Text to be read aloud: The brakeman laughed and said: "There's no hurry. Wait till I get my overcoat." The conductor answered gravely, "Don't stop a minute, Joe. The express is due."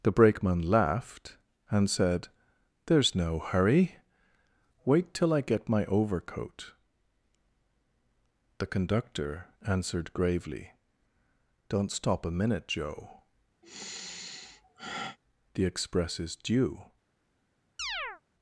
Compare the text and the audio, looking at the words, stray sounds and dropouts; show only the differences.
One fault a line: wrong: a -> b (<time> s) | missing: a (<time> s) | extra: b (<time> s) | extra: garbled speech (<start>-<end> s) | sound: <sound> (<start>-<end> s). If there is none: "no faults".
sound: sigh (13.6-15.2 s)
sound: chirp (17.8-18.2 s)